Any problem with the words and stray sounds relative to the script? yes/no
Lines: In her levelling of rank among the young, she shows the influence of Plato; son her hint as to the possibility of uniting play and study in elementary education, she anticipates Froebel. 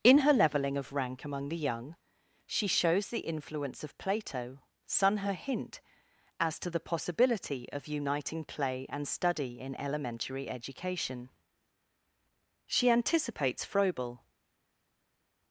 no